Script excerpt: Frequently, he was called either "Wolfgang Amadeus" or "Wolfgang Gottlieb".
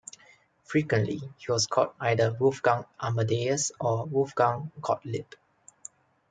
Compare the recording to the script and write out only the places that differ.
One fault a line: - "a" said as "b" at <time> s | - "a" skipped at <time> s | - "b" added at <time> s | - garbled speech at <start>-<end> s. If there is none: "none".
none